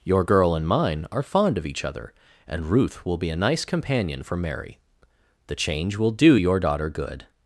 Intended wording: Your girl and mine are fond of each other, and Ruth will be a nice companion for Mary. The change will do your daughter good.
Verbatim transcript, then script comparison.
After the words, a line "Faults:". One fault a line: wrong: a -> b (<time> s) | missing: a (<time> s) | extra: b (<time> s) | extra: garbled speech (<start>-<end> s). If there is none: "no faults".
Your girl and mine are fond of each other, and Ruth will be a nice companion for Mary. The change will do your daughter good.
Faults:
no faults